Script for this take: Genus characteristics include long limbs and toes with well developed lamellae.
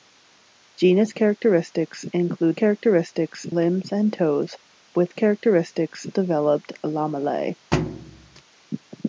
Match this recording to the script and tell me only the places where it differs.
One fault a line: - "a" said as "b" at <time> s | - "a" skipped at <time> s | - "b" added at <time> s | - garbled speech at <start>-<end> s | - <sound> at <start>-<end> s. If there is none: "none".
- "long" said as "characteristics" at 2.5 s
- "well" said as "characteristics" at 5.1 s
- thud at 7.7-8.4 s